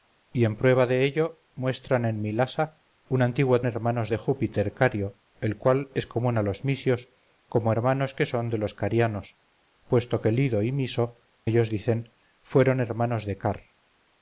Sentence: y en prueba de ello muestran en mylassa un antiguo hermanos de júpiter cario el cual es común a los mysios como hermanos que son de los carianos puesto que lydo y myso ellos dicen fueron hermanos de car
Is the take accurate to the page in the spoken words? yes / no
yes